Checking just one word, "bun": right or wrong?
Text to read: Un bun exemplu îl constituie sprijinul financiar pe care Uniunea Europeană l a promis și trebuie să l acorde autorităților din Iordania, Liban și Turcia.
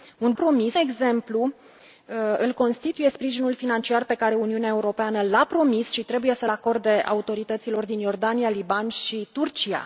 wrong